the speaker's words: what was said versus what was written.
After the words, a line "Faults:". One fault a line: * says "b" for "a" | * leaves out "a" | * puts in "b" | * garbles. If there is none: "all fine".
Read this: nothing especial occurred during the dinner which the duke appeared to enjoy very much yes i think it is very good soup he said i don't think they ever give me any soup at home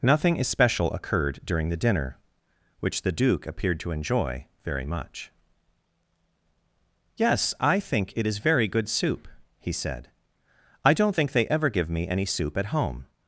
nothing especial occurred during the dinner which the duke appeared to enjoy very much yes i think it is very good soup he said i don't think they ever give me any soup at home
Faults:
all fine